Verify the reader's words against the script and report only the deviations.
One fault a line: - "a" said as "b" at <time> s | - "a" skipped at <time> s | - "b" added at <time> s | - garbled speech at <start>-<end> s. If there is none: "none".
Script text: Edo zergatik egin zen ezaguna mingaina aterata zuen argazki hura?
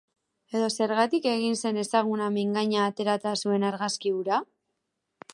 none